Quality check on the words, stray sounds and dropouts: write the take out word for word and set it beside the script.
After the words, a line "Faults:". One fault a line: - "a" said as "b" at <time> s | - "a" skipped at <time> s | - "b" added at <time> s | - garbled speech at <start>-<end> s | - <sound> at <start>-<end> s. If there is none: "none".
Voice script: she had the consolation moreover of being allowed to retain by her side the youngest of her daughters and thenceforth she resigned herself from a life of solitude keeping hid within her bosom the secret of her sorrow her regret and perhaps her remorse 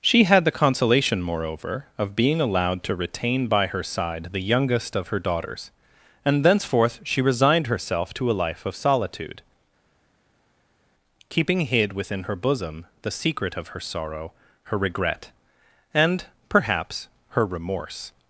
she had the consolation moreover of being allowed to retain by her side the youngest of her daughters and thenceforth she resigned herself to a life of solitude keeping hid within her bosom the secret of her sorrow her regret and perhaps her remorse
Faults:
- "from" said as "to" at 8.1 s